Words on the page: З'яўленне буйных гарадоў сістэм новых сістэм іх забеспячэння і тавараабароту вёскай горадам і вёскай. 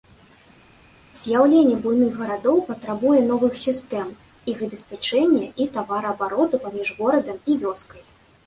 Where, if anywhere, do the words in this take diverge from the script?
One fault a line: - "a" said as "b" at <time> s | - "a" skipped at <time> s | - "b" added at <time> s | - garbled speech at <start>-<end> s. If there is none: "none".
- "сістэм" said as "патрабуе" at 2.7 s
- "вёскай" said as "паміж" at 6.7 s